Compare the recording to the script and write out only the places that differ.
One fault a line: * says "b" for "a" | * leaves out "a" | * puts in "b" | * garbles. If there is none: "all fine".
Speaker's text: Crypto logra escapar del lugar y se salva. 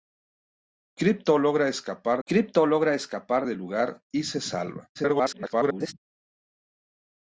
* puts in "crypto logra escapar"
* garbles